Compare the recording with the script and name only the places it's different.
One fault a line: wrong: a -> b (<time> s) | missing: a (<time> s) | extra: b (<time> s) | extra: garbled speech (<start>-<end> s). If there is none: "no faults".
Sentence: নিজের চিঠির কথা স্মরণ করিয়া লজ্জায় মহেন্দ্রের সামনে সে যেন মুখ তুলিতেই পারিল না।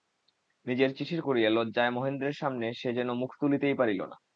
missing: কথা স্মরণ (1.2 s)